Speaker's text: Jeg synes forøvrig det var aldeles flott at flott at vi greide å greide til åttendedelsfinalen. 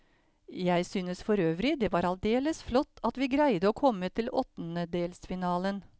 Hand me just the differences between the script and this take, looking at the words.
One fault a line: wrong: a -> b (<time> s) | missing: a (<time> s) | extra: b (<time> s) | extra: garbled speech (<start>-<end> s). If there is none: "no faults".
missing: flott at (3.2 s)
wrong: greide -> komme (3.8 s)